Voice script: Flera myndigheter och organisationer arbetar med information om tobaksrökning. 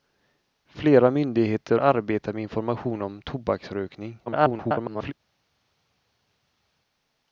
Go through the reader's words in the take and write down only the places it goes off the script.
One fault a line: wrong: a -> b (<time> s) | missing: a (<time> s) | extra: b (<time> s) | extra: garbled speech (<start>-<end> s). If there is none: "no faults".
missing: och organisationer (1.8 s)
extra: garbled speech (4.3-5.1 s)